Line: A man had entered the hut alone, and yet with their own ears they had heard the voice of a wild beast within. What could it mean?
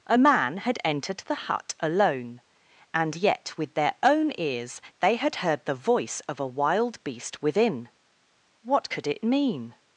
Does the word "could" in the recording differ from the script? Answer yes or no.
no